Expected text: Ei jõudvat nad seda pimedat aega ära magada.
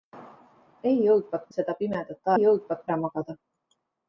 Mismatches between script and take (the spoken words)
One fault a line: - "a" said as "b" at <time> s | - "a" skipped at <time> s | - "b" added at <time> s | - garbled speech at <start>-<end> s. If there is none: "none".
- "nad" skipped at 1.5 s
- "aega" said as "jõudvat" at 2.4 s